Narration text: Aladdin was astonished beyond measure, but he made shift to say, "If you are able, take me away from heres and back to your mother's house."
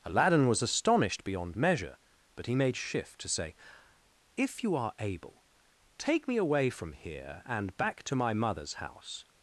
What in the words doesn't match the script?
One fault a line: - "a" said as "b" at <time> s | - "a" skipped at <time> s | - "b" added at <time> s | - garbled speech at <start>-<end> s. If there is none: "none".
- "heres" said as "here" at 6.9 s
- "your" said as "my" at 8.1 s